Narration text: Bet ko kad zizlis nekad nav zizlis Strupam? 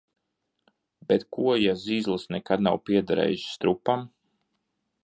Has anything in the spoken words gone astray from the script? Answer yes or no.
yes